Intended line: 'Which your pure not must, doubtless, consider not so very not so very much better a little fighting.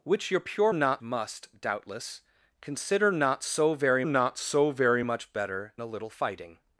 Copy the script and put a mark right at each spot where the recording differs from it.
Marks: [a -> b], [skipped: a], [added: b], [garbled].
'Which your pure not must, doubtless, consider not so very not so very much better a little fighting.